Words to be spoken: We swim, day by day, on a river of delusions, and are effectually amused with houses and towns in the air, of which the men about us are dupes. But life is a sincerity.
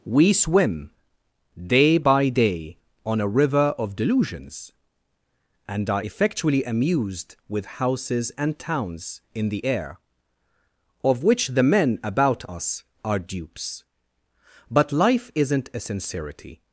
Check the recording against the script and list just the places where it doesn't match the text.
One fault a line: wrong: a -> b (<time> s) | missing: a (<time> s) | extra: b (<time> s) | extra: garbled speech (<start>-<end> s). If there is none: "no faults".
wrong: is -> isn't (15.4 s)